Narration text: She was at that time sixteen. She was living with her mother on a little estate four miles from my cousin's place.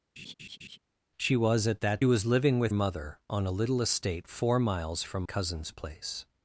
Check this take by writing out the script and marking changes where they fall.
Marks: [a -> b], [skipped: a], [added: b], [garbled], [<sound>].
[laugh] She was at that [skipped: time sixteen. She] was living with [skipped: her] mother on a little estate four miles from [skipped: my] cousin's place.